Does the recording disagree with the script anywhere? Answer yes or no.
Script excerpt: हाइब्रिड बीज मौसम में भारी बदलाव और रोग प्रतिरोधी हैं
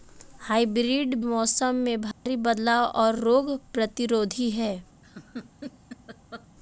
yes